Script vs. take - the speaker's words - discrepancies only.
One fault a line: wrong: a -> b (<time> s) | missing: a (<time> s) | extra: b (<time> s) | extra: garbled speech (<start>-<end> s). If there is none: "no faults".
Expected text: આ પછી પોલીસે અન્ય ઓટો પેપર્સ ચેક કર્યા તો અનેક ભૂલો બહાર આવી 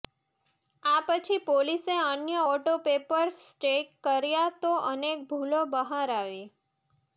no faults